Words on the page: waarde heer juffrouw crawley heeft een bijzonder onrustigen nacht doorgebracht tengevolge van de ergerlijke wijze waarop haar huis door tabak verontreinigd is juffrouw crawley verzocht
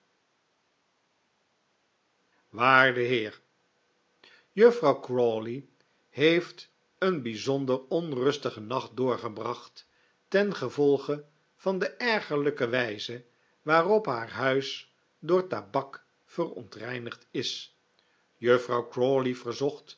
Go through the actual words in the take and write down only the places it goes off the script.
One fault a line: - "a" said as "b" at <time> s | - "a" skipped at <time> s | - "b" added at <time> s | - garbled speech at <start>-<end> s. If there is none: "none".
none